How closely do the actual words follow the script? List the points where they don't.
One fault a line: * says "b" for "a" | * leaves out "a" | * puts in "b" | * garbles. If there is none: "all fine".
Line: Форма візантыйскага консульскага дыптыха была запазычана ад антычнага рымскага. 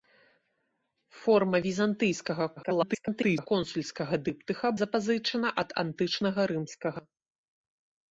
* garbles
* leaves out "была"